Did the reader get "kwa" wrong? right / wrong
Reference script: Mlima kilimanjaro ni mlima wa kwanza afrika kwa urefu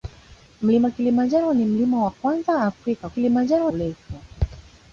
wrong